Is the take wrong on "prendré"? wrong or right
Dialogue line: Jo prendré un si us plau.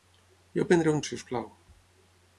right